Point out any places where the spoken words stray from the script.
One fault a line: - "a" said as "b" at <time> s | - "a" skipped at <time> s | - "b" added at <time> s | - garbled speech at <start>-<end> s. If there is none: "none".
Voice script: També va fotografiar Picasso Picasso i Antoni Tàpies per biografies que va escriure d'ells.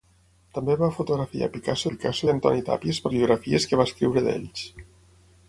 none